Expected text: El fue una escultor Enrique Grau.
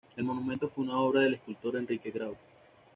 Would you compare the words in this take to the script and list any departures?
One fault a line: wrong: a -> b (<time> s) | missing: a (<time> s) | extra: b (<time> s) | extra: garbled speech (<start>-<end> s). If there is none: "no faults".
extra: monumento (0.2 s)
extra: obra del (1.0 s)